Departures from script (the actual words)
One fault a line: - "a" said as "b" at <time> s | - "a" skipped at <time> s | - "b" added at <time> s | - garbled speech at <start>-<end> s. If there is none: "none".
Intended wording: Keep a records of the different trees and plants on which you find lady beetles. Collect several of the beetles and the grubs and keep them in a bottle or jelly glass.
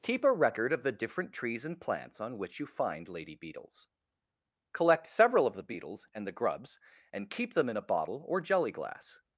- "records" said as "record" at 0.3 s